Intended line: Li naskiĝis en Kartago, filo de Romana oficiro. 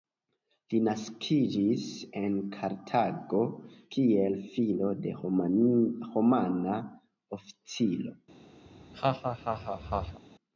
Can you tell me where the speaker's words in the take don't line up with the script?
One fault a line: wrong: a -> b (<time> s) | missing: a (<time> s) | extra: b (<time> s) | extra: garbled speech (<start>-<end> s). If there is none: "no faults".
extra: kiel (4.0 s)